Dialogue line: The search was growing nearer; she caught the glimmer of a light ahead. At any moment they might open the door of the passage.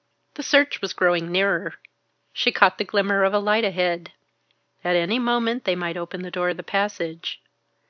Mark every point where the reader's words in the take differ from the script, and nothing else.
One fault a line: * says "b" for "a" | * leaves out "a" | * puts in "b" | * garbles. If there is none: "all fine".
all fine